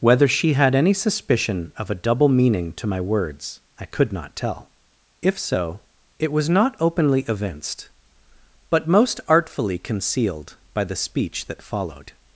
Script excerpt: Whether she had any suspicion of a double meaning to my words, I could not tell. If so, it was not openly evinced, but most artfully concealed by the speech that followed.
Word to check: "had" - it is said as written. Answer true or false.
true